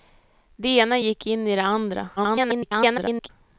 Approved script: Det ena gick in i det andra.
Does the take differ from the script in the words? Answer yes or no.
yes